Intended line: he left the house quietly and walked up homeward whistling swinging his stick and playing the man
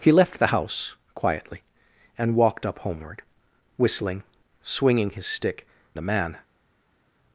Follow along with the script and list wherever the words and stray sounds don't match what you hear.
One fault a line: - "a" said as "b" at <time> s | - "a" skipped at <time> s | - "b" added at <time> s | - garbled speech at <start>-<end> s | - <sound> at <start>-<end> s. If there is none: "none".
- "and playing" skipped at 5.7 s